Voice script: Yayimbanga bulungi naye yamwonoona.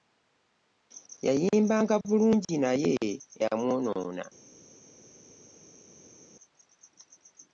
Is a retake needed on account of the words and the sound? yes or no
no